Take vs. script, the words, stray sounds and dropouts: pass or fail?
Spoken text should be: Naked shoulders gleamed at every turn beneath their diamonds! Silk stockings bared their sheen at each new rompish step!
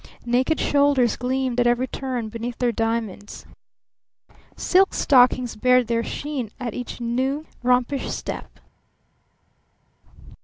pass